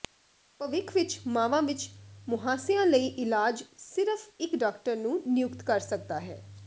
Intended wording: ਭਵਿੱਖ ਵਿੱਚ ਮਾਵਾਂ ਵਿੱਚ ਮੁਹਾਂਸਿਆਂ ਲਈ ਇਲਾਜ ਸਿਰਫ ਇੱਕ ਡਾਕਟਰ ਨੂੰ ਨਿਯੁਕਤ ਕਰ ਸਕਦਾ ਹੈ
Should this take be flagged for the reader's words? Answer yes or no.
no